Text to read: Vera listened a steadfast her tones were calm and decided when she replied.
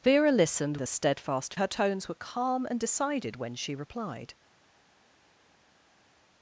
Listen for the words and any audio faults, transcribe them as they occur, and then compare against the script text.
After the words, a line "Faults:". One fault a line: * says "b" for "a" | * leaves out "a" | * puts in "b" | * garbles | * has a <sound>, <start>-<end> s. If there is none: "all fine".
Vera listened a steadfast her tones were calm and decided when she replied.
Faults:
all fine